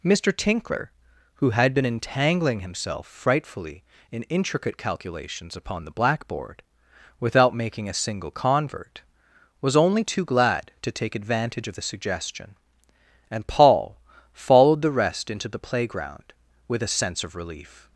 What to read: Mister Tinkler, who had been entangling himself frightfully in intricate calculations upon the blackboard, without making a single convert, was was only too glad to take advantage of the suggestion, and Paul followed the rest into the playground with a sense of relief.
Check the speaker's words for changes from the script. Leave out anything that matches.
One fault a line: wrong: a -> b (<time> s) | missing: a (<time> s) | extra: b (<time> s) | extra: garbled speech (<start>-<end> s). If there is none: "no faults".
missing: was (9.7 s)